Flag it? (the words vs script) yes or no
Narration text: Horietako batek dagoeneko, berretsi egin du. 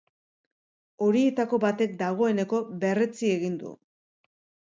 no